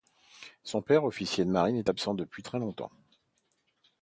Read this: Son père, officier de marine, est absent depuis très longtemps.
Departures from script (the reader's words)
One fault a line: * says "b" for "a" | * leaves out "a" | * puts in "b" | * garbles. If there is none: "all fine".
all fine